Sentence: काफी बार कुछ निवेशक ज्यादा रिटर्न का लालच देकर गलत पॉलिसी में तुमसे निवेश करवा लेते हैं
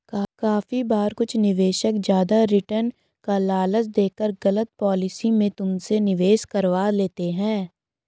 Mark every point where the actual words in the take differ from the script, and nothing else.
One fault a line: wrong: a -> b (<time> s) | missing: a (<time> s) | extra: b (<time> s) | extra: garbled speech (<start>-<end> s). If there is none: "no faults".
no faults